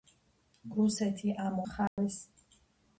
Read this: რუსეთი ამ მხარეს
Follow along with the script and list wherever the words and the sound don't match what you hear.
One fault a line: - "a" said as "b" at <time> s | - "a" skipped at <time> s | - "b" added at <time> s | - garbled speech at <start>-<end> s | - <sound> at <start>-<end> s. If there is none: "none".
- dropout at 1.9-2.0 s